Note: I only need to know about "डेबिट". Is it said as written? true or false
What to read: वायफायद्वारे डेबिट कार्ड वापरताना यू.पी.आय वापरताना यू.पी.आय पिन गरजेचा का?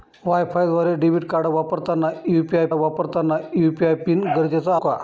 true